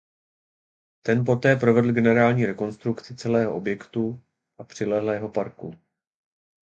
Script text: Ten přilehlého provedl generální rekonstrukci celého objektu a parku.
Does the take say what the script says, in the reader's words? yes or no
no